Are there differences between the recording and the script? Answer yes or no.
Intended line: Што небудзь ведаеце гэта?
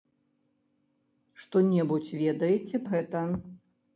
no